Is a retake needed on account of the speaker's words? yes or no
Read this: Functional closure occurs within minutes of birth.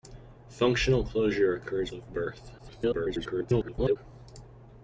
yes